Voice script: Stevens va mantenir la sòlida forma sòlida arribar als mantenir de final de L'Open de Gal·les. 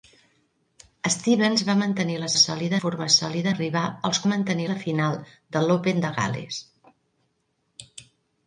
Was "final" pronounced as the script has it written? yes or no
yes